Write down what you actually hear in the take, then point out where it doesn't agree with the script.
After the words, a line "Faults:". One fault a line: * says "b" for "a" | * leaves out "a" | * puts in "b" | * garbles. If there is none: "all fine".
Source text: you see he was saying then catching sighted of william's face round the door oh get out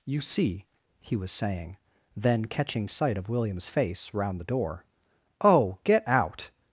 you see he was saying then catching sight of william's face round the door oh get out
Faults:
* says "sight" for "sighted"